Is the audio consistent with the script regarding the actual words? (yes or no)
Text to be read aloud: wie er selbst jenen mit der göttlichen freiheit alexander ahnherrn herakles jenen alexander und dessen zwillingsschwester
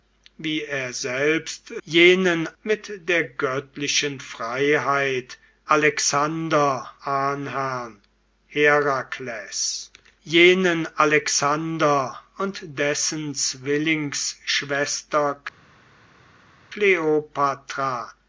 yes